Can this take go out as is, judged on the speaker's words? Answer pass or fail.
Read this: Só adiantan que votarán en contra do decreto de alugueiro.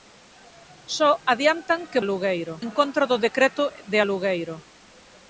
fail